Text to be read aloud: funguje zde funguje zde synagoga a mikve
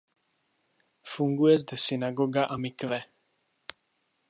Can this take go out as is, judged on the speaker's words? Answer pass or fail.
fail